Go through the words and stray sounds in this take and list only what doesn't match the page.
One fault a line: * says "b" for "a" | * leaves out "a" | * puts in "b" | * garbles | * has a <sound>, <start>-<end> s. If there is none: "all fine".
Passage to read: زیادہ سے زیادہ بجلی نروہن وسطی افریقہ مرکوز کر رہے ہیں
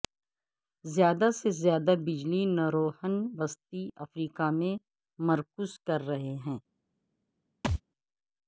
* puts in "میں"
* has a thud, 7.6-7.8 s